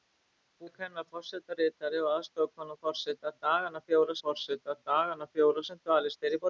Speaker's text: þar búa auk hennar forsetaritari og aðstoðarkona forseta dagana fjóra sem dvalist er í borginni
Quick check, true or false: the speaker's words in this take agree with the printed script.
false